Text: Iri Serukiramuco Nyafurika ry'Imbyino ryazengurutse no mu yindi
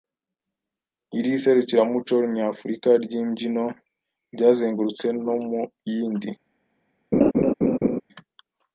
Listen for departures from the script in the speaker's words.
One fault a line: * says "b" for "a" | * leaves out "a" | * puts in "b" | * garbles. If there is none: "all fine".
all fine